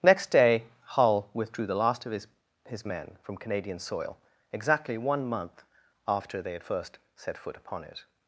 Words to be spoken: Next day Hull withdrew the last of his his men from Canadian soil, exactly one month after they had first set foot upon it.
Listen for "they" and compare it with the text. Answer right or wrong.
right